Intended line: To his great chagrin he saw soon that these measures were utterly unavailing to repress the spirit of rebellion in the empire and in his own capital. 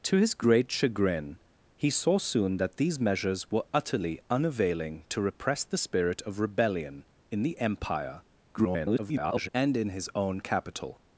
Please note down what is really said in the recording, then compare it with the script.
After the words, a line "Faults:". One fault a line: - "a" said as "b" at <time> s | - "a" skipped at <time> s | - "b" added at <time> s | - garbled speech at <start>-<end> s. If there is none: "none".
To his great chagrin he saw soon that these measures were utterly unavailing to repress the spirit of rebellion in the empire [garbled] and in his own capital.
Faults:
- garbled speech at 8.5-9.5 s